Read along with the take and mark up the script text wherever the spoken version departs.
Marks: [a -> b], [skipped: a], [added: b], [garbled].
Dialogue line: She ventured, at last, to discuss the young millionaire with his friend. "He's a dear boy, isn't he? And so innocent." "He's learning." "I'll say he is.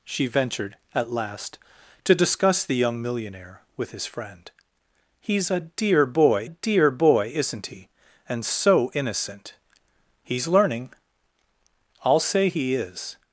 She ventured, at last, to discuss the young millionaire with his friend. "He's a dear boy, [added: dear boy] isn't he? And so innocent." "He's learning." "I'll say he is.